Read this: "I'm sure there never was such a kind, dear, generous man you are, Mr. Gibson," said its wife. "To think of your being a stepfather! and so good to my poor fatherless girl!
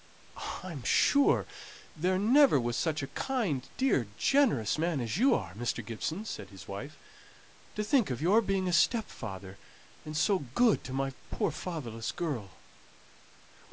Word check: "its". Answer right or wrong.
wrong